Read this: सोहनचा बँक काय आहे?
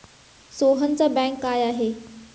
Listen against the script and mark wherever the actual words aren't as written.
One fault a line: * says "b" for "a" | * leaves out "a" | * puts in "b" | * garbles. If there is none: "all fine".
all fine